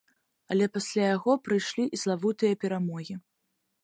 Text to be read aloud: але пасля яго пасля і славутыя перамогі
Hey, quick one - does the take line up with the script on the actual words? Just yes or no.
no